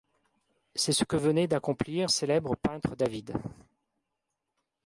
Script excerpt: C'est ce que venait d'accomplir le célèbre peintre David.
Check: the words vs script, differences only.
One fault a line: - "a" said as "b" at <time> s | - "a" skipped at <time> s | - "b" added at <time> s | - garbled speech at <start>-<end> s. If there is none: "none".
- "le" skipped at 2.1 s